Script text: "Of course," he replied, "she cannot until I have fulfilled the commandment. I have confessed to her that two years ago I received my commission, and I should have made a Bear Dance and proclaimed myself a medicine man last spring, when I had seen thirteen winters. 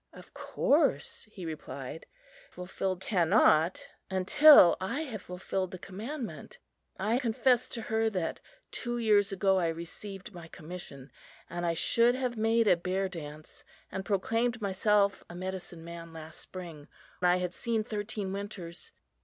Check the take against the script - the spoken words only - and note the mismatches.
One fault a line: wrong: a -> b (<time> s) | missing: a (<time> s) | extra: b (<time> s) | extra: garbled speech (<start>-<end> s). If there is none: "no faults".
wrong: she -> fulfilled (2.5 s)
missing: have (7.2 s)
missing: when (16.9 s)